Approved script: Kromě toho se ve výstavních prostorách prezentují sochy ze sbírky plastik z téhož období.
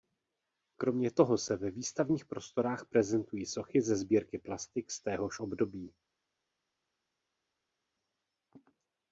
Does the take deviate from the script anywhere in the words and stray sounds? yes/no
no